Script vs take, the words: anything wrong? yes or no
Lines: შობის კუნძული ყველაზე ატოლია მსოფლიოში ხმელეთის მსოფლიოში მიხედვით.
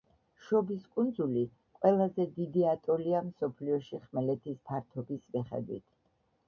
yes